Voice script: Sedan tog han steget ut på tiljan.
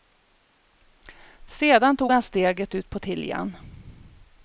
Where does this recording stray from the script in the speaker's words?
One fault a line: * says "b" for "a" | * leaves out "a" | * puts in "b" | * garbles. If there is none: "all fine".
all fine